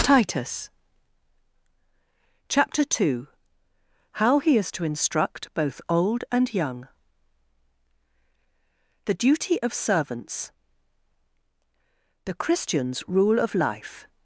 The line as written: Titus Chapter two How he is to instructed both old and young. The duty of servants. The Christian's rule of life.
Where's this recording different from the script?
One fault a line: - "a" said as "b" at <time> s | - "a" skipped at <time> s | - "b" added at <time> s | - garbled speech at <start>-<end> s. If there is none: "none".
- "instructed" said as "instruct" at 4.8 s